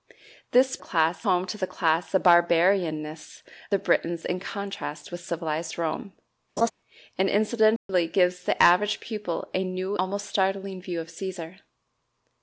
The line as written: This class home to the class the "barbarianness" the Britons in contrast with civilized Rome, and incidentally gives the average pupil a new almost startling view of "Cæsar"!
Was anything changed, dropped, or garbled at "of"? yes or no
no